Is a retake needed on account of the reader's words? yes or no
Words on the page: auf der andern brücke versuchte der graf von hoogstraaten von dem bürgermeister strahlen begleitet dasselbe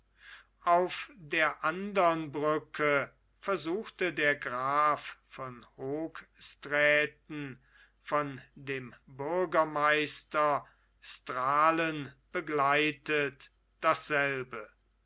no